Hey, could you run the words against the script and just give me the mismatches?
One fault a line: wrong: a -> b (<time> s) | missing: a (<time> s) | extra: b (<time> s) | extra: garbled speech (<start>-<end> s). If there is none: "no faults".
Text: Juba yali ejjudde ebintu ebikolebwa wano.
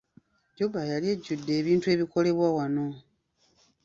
no faults